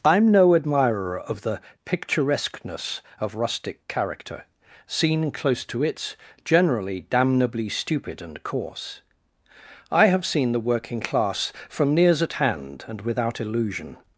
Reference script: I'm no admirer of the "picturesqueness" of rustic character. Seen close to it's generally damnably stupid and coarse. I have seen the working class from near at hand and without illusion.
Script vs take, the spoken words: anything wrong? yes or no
yes